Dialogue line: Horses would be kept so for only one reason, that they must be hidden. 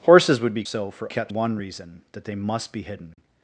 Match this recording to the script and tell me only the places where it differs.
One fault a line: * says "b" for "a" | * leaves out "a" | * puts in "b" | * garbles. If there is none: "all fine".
* leaves out "kept"
* says "kept" for "only"